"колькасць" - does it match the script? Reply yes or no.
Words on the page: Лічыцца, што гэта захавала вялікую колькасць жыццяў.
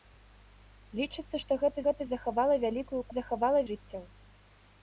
no